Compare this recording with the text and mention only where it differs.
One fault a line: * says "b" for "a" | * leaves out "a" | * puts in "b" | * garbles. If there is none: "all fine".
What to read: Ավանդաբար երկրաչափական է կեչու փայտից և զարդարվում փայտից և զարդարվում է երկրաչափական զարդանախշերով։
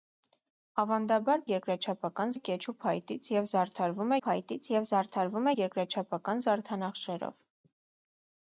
all fine